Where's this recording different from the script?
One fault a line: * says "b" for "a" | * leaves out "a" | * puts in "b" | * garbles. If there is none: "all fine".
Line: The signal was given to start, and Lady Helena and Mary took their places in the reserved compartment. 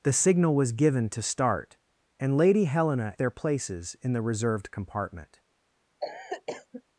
* leaves out "and Mary took"